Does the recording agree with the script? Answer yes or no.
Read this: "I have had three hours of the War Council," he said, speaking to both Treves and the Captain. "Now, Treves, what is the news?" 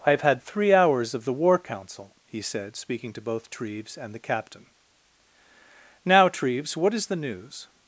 yes